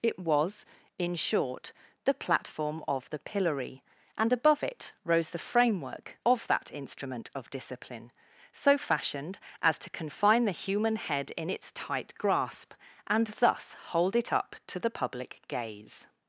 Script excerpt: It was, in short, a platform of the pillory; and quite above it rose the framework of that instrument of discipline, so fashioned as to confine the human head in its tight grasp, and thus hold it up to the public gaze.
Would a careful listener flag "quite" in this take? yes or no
yes